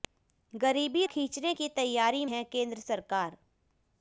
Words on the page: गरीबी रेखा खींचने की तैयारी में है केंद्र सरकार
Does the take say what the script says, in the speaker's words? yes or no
no